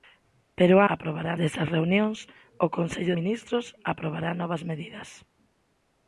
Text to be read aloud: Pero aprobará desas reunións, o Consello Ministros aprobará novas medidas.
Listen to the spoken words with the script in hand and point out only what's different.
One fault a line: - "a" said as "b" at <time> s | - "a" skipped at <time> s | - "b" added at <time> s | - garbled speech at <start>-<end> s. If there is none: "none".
none